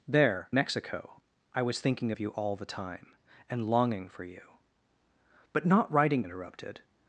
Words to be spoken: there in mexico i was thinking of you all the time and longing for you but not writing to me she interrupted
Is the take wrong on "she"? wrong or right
wrong